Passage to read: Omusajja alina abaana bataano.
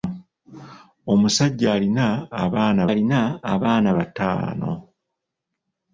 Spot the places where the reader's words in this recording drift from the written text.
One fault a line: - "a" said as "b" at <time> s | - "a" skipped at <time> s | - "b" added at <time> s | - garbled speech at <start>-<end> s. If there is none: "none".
- "alina abaana" added at 2.9 s